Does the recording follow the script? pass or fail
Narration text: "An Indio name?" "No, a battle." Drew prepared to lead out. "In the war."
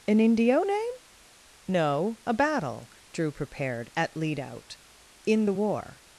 fail